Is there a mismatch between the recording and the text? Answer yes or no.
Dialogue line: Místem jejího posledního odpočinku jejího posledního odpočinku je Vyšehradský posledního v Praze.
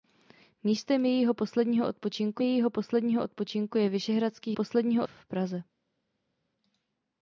no